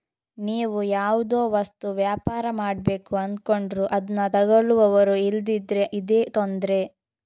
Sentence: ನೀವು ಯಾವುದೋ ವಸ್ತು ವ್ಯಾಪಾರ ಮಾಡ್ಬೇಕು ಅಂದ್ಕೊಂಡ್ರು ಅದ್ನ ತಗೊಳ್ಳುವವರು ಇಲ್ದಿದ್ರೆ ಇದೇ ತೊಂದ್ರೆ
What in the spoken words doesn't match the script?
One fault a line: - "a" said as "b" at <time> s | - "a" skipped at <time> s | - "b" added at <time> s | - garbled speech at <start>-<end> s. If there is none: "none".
none